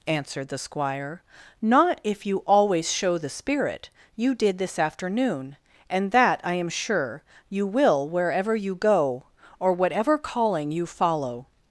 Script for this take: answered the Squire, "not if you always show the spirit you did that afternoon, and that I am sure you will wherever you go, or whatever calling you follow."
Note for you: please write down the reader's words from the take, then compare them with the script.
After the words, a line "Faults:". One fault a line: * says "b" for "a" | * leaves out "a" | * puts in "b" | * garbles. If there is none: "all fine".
answered the Squire, "not if you always show the spirit you did this afternoon, and that I am sure you will wherever you go, or whatever calling you follow."
Faults:
* says "this" for "that"